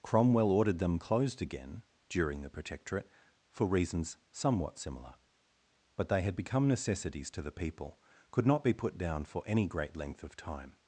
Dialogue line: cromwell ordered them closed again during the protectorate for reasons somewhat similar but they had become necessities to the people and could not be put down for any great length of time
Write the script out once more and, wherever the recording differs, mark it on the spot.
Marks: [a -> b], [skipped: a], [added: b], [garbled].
cromwell ordered them closed again during the protectorate for reasons somewhat similar but they had become necessities to the people [skipped: and] could not be put down for any great length of time